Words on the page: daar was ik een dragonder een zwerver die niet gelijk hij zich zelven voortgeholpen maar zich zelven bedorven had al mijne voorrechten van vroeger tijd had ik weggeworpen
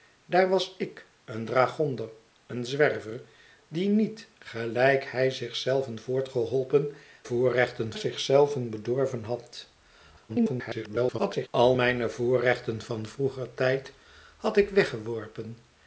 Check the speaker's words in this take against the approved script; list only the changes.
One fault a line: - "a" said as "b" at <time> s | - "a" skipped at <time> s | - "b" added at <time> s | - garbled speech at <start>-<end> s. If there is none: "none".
- "maar" said as "voorrechten" at 7.2 s
- garbled speech at 10.3-11.5 s